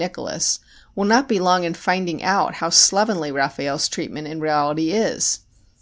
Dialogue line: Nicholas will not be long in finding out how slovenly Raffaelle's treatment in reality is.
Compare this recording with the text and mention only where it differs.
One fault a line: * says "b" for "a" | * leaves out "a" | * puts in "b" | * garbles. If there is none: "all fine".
all fine